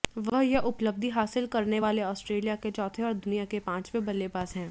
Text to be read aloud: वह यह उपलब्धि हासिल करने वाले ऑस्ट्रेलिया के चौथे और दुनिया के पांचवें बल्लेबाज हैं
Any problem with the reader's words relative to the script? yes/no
no